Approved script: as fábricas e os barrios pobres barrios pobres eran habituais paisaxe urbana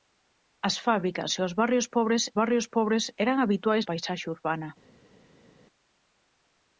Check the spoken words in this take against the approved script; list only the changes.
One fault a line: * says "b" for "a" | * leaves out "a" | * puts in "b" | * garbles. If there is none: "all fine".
all fine